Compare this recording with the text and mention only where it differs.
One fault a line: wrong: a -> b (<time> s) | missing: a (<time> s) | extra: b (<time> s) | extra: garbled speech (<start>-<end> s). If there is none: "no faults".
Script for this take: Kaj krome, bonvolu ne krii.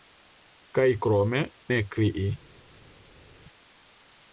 missing: bonvolu (1.4 s)